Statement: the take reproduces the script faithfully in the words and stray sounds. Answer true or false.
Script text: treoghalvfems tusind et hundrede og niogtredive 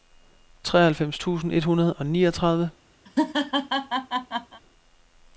false